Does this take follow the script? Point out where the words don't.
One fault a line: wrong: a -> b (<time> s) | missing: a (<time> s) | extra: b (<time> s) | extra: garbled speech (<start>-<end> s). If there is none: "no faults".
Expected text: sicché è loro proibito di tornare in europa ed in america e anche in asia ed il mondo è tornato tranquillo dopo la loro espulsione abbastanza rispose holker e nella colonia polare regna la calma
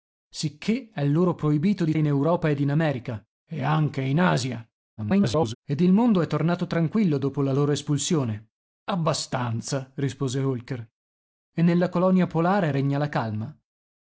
missing: tornare (1.9 s)
extra: garbled speech (5.0-5.5 s)